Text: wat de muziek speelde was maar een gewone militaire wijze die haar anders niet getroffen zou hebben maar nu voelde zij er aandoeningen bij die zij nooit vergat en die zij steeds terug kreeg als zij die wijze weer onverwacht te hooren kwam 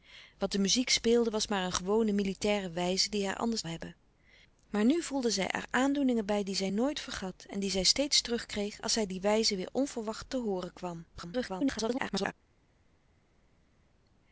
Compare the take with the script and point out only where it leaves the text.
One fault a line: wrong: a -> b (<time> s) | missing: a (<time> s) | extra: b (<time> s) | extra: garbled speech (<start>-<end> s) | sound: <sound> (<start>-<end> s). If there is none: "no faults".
missing: niet getroffen zou (3.6 s)
extra: garbled speech (11.1-12.3 s)